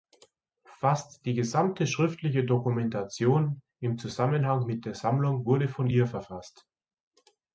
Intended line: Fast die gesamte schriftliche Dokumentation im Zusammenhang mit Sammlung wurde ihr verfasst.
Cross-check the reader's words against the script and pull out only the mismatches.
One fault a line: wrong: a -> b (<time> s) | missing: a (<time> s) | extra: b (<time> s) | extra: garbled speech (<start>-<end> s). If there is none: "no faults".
extra: der (4.8 s)
extra: von (5.7 s)